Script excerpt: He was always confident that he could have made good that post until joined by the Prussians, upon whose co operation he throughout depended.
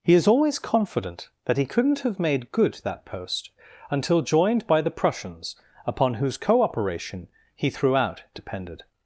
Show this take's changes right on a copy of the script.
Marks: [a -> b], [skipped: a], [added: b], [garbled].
He [was -> is] always confident that he [could -> couldn't] have made good that post until joined by the Prussians, upon whose co operation he throughout depended.